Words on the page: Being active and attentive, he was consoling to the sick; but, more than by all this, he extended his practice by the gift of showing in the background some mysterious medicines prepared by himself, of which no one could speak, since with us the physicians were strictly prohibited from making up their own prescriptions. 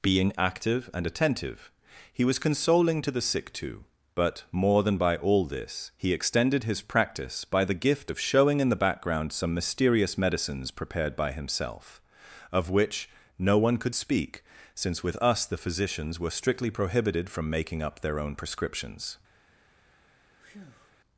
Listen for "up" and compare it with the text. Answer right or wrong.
right